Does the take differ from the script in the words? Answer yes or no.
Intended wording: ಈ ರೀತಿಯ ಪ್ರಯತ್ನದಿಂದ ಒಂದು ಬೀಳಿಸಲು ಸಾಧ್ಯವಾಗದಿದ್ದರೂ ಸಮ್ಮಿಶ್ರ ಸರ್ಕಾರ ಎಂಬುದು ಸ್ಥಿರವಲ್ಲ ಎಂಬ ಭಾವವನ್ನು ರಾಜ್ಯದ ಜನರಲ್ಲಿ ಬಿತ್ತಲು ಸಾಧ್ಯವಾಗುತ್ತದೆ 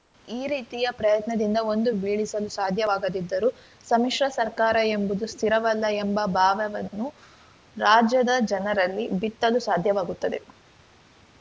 no